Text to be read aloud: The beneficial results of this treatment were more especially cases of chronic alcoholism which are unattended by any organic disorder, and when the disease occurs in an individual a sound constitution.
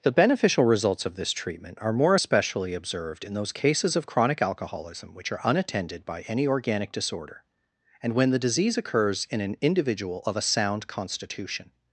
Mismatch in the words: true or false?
true